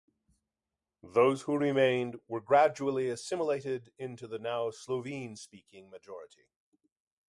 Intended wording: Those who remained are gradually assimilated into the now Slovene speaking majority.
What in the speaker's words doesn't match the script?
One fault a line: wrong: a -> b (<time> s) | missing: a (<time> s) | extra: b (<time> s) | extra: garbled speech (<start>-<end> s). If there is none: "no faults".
wrong: are -> were (2.3 s)